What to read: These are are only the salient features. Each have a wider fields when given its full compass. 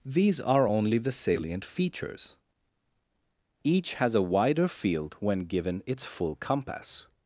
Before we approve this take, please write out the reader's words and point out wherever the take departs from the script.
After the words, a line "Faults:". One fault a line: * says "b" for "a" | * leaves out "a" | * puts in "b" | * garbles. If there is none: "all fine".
These are only the salient features. Each has a wider field when given its full compass.
Faults:
* leaves out "are"
* says "has" for "have"
* says "field" for "fields"